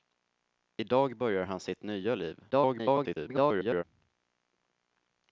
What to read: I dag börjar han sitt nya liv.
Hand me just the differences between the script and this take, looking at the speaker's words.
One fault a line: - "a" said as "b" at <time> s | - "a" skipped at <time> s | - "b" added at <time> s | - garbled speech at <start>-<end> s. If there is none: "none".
- garbled speech at 2.5-3.8 s